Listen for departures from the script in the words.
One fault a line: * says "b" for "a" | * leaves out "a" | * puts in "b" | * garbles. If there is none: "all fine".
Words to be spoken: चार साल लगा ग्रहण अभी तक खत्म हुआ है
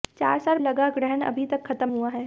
all fine